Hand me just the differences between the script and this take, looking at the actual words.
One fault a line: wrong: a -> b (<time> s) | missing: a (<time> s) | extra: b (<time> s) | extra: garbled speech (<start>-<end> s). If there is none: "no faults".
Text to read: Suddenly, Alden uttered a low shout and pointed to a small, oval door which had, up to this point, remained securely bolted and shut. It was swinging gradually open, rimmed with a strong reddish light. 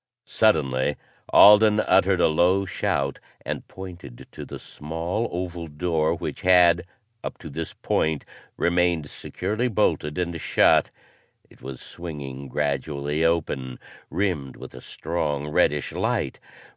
wrong: a -> the (4.4 s)